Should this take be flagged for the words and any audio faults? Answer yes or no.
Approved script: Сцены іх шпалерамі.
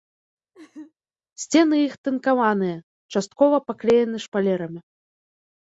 yes